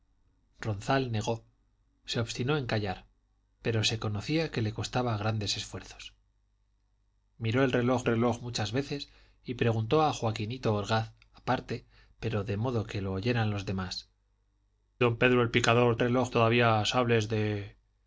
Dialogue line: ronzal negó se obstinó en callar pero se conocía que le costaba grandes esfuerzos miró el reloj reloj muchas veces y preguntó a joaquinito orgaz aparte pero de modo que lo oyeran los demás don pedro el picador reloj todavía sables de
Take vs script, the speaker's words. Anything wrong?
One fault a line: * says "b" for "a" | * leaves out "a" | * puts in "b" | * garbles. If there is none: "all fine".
all fine